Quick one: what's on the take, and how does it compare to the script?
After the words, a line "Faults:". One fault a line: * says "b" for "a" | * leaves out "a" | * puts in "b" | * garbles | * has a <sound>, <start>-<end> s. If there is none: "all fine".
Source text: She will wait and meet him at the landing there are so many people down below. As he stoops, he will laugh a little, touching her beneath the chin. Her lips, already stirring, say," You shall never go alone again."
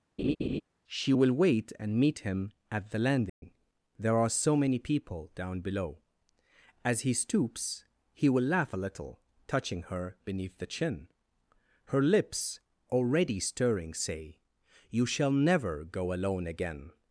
She will wait and meet him at the landing there are so many people down below. As he stoops, he will laugh a little, touching her beneath the chin. Her lips, already stirring, say," You shall never go alone again."
Faults:
* has a laugh, 0.2-0.6 s
* has a dropout, 3.3-3.4 s